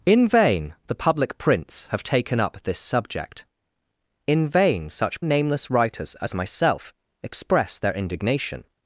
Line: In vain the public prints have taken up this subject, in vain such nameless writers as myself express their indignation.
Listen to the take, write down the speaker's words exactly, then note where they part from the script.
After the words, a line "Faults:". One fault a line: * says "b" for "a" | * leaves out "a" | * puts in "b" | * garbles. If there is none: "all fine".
In vain the public prints have taken up this subject, in vain such nameless writers as myself express their indignation.
Faults:
all fine